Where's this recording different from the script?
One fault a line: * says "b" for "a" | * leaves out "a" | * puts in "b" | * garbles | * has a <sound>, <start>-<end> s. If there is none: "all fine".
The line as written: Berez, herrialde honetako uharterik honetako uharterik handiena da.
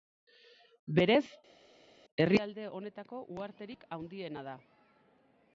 * leaves out "honetako uharterik"